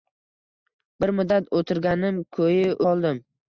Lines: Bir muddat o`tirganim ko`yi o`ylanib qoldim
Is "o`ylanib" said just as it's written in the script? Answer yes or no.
no